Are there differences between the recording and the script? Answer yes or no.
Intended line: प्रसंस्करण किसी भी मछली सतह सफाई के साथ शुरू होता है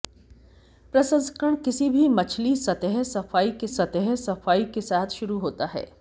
yes